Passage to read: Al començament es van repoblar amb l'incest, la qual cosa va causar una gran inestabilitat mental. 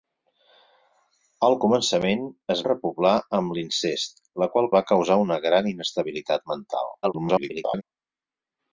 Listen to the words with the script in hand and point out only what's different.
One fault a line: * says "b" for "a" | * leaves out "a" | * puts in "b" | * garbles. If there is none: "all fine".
* leaves out "van"
* leaves out "cosa"
* garbles